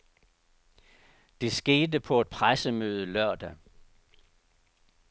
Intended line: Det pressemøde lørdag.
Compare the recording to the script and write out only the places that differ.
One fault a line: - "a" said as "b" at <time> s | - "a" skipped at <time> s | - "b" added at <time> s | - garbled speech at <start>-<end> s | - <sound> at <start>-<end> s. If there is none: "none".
- "skete på et" added at 1.5 s